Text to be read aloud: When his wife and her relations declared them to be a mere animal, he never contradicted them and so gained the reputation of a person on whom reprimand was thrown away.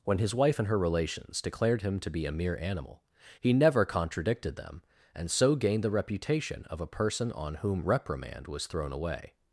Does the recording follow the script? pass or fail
fail